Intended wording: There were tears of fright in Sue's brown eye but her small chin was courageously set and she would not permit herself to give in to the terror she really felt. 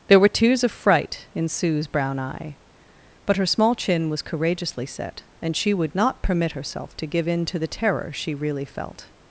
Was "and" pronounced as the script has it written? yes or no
yes